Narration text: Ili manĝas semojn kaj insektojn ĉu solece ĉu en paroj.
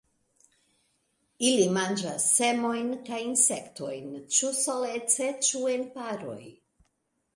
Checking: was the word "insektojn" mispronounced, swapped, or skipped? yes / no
no